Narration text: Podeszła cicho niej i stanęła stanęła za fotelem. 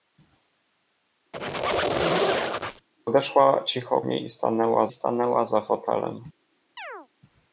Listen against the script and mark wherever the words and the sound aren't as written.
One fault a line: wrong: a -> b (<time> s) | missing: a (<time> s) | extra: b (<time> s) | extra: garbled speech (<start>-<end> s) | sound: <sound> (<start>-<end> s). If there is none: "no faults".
sound: squeak (1.3-2.9 s)
sound: chirp (6.8-7.1 s)